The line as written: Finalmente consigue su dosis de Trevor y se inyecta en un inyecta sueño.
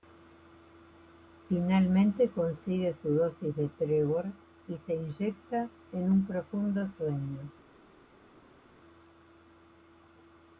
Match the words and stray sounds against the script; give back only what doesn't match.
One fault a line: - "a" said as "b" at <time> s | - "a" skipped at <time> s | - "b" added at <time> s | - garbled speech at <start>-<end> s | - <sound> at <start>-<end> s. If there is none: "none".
- "inyecta" said as "profundo" at 6.2 s